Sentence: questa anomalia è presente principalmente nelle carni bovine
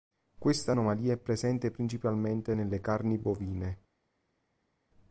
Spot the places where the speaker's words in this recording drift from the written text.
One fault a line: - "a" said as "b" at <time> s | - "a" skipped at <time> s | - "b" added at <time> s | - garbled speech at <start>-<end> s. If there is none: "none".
none